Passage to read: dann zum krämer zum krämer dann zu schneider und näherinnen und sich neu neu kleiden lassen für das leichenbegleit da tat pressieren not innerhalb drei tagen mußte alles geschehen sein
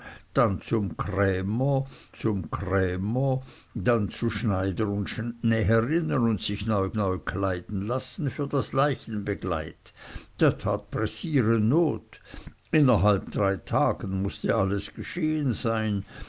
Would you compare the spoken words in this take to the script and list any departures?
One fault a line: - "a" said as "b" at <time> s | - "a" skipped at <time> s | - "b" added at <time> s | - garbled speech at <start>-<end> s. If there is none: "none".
none